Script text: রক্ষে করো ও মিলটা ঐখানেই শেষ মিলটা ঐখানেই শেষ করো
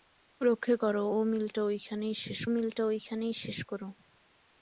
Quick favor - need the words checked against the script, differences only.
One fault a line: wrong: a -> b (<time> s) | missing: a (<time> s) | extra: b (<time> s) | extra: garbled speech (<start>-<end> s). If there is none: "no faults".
no faults